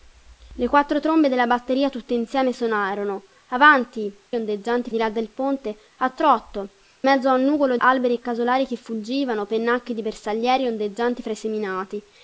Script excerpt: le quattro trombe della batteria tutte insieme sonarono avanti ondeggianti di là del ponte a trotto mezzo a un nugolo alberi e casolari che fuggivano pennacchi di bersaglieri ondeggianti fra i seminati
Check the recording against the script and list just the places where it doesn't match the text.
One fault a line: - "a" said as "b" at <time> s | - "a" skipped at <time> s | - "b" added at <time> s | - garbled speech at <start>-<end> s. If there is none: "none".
none